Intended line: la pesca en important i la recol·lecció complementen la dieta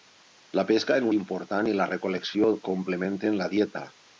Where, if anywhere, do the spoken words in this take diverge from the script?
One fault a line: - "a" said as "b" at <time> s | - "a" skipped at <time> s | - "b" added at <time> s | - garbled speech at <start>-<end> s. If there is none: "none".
none